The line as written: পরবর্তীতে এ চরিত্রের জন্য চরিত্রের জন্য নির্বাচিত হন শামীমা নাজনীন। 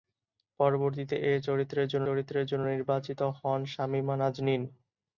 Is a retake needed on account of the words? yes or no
no